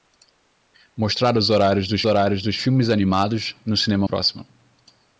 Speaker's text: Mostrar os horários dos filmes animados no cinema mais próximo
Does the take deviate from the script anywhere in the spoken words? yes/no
yes